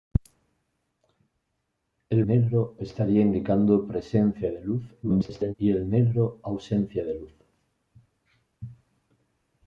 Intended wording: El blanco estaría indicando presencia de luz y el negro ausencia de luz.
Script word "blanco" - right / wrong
wrong